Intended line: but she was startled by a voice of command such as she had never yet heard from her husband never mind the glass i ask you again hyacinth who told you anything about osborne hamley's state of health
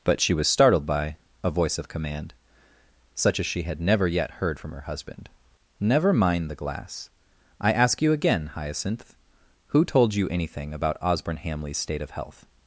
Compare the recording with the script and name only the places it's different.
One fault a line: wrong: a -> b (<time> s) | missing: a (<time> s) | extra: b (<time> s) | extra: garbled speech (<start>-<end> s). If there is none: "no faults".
no faults